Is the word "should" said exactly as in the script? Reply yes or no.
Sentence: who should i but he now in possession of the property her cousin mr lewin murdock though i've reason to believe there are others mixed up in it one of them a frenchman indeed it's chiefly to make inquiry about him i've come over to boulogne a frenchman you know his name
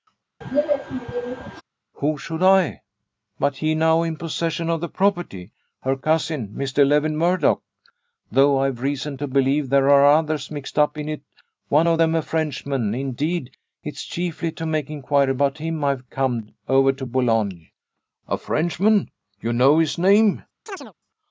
yes